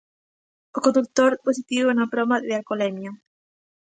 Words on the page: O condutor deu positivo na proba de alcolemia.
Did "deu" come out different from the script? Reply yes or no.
yes